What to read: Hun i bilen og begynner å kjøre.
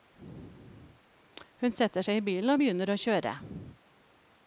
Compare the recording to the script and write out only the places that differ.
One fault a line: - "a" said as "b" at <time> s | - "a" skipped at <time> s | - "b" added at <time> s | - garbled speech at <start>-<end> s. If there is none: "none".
- "setter seg" added at 1.8 s